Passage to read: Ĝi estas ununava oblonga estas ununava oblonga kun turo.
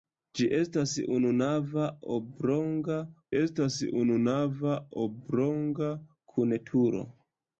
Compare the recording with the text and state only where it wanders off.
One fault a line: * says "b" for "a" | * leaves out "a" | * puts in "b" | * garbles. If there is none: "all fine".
all fine